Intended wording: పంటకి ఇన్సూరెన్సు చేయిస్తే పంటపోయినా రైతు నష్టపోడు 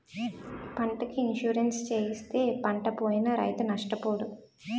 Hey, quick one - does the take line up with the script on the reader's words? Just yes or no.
yes